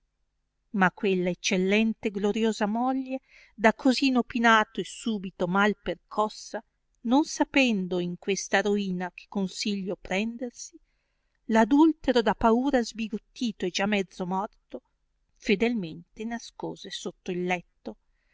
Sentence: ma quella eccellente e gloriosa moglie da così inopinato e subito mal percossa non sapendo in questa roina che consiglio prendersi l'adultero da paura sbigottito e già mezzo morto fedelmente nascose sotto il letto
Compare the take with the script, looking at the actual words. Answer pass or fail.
pass